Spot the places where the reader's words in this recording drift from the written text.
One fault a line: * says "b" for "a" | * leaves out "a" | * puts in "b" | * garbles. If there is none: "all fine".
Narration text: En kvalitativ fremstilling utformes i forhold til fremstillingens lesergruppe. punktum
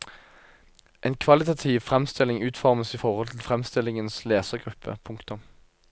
all fine